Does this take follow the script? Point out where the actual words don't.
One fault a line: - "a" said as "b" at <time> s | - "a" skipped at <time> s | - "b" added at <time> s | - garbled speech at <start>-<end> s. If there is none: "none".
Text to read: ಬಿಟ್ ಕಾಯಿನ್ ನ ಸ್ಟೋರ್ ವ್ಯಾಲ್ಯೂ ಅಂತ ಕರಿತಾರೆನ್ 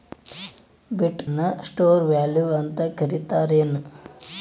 - "ಕಾಯಿನ್" skipped at 1.2 s